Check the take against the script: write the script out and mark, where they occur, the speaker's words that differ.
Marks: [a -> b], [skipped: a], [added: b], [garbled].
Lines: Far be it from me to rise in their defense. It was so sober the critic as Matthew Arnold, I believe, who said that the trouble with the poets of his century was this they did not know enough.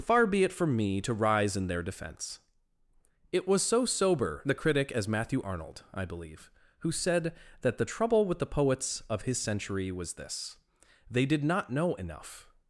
Far be it from me to rise in their defense. It was so sober the critic as Matthew Arnold, I believe, who said that the trouble with the poets of his century was this they did not know enough.